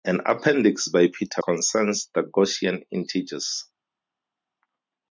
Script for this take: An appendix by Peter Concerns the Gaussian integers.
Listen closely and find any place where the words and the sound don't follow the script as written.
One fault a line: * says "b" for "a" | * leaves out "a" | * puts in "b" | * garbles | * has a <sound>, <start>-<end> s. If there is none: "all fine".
all fine